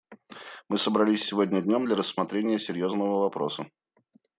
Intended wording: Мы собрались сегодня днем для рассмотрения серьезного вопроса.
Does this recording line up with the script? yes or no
yes